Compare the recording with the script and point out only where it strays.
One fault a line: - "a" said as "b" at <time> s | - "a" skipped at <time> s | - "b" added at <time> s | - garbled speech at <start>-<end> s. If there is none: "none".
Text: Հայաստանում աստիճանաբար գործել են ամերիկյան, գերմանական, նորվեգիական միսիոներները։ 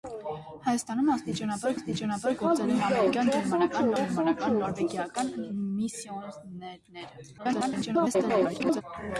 - "աստիճանաբար" added at 1.8 s
- "գերմանական" added at 4.0 s
- garbled speech at 7.4-8.8 s